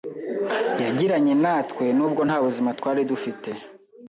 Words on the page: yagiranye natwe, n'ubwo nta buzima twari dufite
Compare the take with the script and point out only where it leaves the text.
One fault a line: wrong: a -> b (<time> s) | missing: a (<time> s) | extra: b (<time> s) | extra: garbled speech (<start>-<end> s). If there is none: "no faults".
no faults